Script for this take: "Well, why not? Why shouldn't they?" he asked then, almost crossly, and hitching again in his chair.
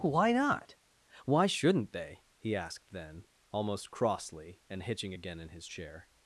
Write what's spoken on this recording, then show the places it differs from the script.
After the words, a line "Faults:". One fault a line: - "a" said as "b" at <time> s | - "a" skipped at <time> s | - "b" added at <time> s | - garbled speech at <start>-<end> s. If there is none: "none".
why not? Why shouldn't they?" he asked then, almost crossly, and hitching again in his chair.
Faults:
- "Well" skipped at 0.0 s